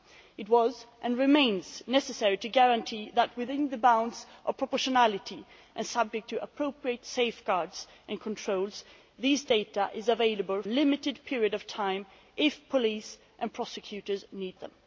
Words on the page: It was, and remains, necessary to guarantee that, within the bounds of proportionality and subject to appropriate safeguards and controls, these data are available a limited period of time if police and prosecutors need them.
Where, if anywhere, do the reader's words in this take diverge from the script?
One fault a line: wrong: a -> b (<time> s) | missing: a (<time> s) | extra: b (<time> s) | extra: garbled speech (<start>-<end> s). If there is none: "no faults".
no faults